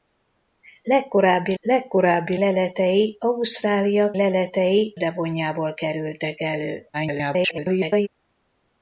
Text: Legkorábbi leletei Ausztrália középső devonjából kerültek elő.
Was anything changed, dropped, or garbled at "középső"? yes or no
yes